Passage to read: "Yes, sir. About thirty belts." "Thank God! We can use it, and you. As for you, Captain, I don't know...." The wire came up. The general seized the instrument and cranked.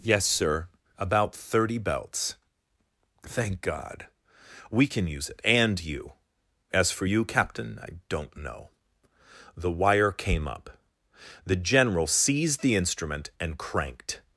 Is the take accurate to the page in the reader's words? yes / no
yes